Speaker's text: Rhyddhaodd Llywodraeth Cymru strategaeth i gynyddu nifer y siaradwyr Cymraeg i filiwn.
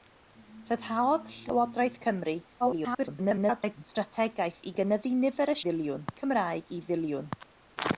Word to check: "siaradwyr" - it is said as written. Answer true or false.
false